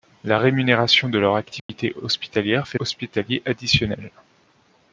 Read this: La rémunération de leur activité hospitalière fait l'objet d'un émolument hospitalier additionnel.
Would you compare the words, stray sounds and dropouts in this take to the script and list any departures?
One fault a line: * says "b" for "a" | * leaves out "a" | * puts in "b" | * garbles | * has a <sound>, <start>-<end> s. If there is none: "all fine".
* has a dropout, 1.6-1.7 s
* leaves out "l'objet d'un émolument"